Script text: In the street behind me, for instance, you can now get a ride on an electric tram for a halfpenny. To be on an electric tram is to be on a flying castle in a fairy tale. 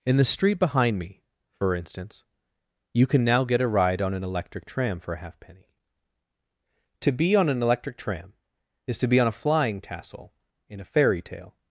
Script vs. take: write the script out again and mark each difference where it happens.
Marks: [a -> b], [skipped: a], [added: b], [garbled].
In the street behind me, for instance, you can now get a ride on an electric tram for a halfpenny. To be on an electric tram is to be on a flying [castle -> tassel] in a fairy tale.